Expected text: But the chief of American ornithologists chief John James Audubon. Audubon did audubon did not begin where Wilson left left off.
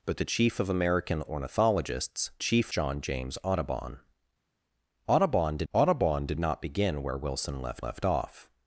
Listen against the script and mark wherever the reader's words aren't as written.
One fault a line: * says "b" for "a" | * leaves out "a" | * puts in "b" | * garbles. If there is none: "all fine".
all fine